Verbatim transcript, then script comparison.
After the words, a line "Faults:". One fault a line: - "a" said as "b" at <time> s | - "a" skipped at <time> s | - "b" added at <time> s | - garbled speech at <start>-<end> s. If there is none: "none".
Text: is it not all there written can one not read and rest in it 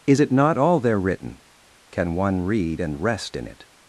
is it not all there written can one read and rest in it
Faults:
- "not" skipped at 2.4 s